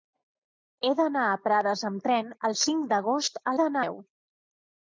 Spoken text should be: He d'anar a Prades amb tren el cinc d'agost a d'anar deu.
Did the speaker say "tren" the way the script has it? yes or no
yes